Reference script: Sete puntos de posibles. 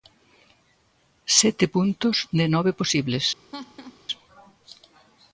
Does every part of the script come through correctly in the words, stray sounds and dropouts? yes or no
no